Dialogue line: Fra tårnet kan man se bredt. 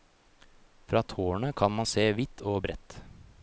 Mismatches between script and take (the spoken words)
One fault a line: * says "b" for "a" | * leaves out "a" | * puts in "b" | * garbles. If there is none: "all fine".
* puts in "vidt og"